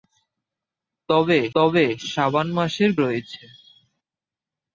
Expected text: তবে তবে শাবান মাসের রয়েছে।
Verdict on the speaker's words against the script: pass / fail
pass